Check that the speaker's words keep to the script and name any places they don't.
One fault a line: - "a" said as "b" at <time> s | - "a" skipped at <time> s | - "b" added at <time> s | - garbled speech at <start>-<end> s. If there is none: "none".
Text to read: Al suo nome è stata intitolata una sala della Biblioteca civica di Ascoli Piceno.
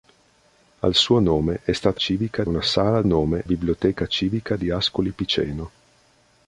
- "intitolata" said as "civica" at 2.0 s
- "della" said as "nome" at 3.0 s